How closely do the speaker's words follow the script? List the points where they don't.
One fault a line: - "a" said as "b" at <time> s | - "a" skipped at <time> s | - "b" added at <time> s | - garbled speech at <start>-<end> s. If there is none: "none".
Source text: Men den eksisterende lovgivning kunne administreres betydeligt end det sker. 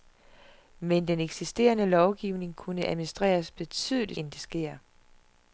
none